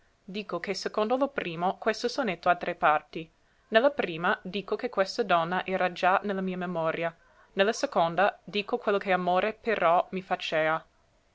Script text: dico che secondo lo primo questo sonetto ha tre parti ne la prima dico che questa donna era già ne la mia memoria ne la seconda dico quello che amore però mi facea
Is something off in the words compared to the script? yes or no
no